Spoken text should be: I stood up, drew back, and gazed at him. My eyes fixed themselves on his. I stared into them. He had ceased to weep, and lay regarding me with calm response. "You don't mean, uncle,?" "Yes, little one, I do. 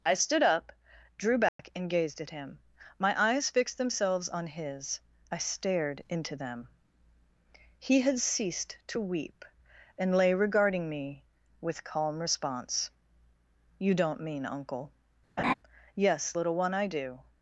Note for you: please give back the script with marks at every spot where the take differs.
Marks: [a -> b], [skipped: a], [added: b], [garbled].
I stood up, drew back, and gazed at him. My eyes fixed themselves on his. I stared into them. He had ceased to weep, and lay regarding me with calm response. "You don't mean, uncle,?" "Yes, little one, I do.